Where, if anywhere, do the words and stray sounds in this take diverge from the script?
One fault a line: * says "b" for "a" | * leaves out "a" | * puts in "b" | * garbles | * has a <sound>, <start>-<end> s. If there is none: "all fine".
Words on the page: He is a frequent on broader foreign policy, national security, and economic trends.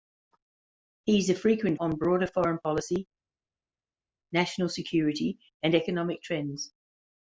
all fine